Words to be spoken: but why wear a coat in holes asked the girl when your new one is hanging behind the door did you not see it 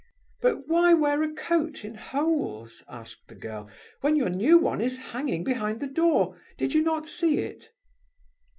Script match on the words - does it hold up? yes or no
yes